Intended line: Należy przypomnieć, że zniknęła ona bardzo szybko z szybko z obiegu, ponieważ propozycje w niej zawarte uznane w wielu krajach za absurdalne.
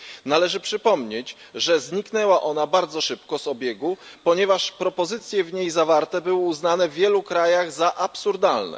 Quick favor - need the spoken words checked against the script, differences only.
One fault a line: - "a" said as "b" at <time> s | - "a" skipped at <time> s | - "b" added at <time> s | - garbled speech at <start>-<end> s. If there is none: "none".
- "szybko z" skipped at 3.5 s
- "były" added at 6.2 s